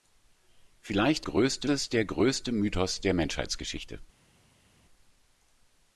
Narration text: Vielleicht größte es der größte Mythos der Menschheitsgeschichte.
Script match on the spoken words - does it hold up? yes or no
yes